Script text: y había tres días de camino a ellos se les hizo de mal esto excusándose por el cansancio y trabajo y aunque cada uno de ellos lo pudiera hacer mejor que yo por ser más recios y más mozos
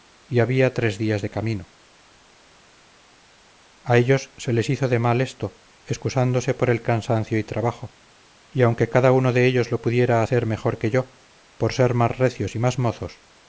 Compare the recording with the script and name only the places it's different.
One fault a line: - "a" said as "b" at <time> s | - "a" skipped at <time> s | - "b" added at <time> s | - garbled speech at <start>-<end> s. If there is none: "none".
none